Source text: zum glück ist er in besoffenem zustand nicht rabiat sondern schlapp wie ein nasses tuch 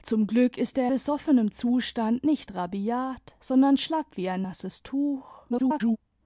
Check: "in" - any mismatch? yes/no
yes